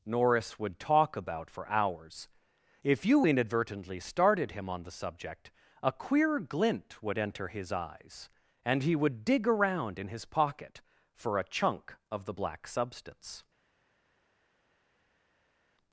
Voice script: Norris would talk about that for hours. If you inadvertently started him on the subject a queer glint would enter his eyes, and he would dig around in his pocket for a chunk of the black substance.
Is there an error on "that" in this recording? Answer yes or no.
yes